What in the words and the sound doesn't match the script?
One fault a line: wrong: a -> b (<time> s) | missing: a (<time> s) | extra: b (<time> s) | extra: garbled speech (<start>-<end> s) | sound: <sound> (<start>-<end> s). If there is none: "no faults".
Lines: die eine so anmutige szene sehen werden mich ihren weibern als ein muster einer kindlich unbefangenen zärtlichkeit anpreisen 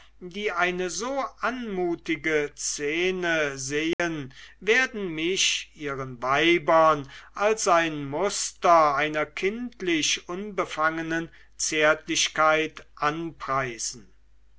sound: dropout (3.9-4.0 s)